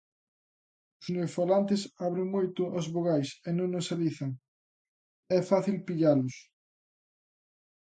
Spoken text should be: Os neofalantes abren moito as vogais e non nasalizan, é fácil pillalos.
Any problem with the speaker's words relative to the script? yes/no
no